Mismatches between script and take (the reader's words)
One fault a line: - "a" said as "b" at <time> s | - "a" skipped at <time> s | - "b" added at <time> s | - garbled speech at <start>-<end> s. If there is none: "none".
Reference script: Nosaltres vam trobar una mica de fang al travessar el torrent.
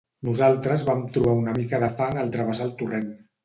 none